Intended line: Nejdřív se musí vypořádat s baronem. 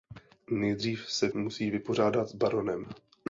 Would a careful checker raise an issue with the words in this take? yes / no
no